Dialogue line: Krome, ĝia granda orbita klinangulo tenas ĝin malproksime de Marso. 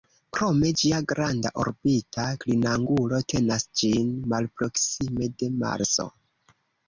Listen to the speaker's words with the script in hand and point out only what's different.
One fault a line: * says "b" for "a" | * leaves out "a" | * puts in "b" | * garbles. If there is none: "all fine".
all fine